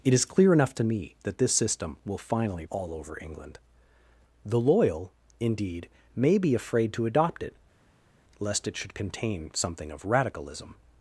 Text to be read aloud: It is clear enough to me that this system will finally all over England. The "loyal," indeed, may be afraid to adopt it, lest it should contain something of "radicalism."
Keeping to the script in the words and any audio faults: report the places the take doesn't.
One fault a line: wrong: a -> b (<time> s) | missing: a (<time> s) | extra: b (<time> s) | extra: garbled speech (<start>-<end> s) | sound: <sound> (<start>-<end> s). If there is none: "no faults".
no faults